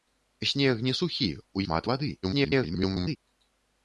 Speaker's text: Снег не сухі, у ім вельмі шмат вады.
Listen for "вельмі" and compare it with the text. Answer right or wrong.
wrong